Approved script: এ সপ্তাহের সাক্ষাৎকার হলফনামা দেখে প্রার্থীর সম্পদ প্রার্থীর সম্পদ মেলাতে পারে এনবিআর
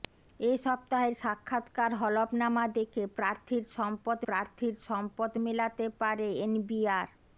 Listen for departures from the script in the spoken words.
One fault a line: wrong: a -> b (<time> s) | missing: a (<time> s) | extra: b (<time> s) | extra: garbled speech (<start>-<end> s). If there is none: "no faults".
no faults